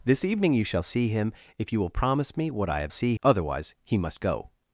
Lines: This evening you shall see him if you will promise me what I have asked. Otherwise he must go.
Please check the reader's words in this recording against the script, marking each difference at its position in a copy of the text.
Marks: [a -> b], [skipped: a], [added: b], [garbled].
This evening you shall see him if you will promise me what I have [asked. -> see] Otherwise he must go.